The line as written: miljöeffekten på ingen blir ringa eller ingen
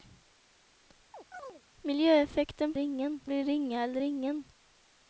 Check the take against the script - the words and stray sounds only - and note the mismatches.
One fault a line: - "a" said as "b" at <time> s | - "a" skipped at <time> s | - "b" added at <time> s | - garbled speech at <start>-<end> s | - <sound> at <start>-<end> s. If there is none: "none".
- chirp at 1.1-1.6 s